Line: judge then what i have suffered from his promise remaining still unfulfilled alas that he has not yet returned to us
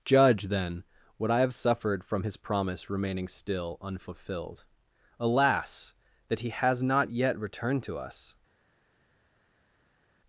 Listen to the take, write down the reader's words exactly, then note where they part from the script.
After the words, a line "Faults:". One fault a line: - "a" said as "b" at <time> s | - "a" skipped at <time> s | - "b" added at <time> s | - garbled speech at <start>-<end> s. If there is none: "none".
judge then what i have suffered from his promise remaining still unfulfilled alas that he has not yet returned to us
Faults:
none